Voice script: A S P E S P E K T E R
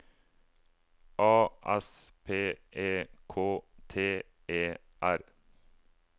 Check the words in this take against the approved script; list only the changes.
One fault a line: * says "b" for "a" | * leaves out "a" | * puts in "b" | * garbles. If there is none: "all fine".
* leaves out "S P E"